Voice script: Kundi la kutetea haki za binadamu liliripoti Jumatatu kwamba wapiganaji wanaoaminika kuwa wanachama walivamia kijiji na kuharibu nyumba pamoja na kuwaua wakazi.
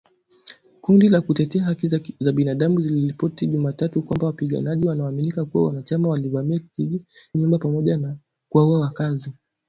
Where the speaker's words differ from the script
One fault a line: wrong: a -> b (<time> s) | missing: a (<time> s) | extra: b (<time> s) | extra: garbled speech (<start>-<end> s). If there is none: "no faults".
missing: na kuharibu (7.0 s)